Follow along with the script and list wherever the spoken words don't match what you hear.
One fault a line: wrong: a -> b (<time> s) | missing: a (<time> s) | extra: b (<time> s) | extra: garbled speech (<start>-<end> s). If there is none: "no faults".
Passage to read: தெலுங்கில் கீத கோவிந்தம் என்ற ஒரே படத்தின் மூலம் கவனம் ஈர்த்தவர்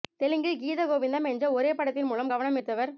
no faults